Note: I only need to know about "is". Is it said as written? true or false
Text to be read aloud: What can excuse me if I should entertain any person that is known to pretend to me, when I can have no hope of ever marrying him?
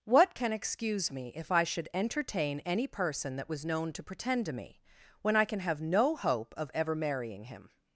false